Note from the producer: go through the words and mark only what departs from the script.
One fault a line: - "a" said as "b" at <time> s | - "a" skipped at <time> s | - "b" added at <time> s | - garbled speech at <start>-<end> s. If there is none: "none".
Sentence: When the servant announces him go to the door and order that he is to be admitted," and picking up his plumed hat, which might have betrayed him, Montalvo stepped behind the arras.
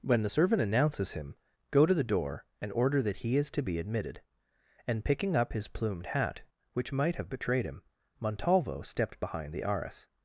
none